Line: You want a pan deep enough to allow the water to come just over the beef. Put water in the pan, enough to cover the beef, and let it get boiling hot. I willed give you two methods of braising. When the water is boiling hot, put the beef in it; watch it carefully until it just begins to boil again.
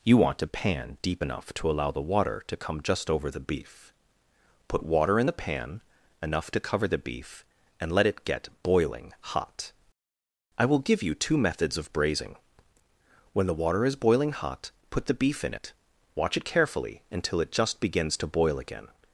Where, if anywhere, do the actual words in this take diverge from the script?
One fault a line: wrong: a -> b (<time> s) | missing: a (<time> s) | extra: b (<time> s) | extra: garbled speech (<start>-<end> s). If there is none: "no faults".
wrong: willed -> will (10.7 s)